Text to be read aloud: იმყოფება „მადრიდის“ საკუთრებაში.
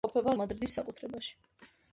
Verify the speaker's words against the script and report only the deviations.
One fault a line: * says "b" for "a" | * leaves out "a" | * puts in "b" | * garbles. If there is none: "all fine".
all fine